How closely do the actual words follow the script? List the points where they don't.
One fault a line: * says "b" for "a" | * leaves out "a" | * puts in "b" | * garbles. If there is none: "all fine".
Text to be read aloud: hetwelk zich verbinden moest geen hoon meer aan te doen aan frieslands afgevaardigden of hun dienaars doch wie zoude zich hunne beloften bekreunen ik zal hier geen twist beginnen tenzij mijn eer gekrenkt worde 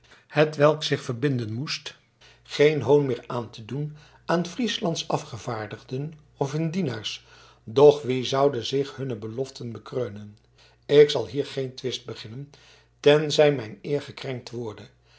all fine